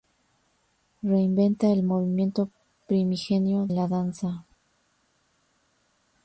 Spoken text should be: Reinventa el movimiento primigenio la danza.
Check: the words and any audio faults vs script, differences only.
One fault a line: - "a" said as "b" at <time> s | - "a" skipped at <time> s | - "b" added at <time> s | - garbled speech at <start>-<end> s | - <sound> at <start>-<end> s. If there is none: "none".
none